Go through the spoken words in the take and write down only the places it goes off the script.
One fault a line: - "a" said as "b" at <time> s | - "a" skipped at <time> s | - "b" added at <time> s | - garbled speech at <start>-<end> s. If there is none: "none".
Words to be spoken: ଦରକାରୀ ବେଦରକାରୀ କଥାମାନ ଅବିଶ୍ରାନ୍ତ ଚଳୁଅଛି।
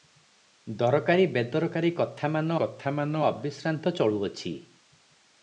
- "କଥାମାନ" added at 2.6 s